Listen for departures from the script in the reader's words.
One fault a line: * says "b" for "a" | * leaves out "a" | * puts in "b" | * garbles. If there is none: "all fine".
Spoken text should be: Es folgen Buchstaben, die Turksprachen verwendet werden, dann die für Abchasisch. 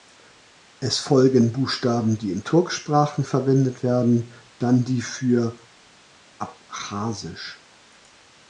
* puts in "in"